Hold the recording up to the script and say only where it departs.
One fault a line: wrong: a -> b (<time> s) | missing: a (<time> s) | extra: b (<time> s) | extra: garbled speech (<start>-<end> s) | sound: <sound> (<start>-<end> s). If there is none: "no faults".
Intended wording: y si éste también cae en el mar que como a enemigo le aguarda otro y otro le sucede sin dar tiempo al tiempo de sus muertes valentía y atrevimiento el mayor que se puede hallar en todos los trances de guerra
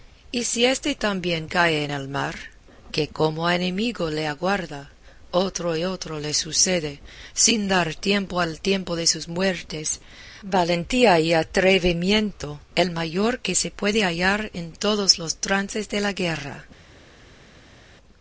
extra: la (16.0 s)